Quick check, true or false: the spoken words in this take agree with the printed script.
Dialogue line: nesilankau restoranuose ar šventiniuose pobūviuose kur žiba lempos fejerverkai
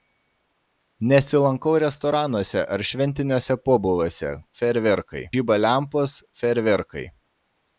false